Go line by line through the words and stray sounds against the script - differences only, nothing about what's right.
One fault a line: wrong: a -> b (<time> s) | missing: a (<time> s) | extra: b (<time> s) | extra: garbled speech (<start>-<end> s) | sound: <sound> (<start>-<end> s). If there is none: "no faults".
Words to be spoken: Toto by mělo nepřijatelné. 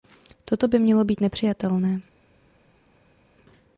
extra: být (1.0 s)